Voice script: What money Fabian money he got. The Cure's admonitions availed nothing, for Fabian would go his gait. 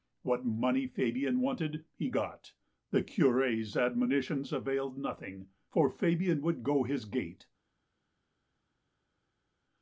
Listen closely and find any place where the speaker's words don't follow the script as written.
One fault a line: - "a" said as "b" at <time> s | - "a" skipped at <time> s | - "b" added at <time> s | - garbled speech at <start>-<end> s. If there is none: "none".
- "money" said as "wanted" at 1.4 s